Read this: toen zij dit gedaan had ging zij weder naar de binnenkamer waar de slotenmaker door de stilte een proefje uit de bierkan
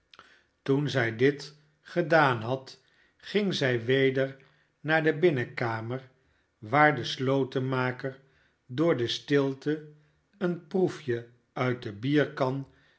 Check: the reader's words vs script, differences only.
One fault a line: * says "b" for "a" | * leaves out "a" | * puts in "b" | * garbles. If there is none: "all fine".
all fine